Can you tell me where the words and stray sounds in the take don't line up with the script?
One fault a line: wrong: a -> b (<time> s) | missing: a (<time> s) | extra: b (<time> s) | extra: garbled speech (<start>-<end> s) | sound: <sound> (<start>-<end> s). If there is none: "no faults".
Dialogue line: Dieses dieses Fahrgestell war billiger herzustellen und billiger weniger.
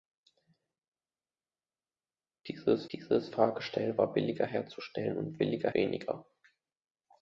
no faults